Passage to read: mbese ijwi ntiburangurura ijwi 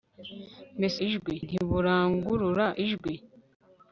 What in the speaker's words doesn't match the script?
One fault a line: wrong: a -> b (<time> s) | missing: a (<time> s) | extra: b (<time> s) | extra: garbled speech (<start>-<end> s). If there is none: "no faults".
no faults